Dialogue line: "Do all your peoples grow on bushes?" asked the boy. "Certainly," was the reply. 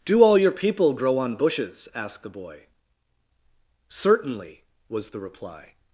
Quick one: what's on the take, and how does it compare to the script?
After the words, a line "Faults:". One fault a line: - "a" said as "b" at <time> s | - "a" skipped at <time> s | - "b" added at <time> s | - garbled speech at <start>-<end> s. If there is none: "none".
"Do all your people grow on bushes?" asked the boy. "Certainly," was the reply.
Faults:
- "peoples" said as "people" at 0.5 s